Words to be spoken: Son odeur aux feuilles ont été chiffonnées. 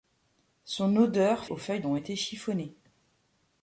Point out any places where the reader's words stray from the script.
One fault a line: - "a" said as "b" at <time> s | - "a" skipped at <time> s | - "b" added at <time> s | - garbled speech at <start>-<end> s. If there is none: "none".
none